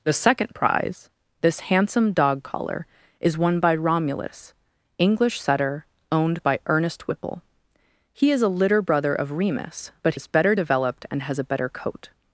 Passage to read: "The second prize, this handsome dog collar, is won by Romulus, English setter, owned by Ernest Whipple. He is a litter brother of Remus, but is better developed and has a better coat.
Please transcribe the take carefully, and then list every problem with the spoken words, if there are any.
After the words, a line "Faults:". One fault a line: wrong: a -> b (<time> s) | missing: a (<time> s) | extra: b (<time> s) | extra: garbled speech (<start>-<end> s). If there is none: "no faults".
"The second prize, this handsome dog collar, is won by Romulus, English setter, owned by Ernest Whipple. He is a litter brother of Remus, but is better developed and has a better coat.
Faults:
no faults